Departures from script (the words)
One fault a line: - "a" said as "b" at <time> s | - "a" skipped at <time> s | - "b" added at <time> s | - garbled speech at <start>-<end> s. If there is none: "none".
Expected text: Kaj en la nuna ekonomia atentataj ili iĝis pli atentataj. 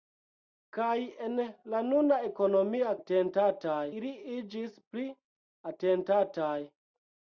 none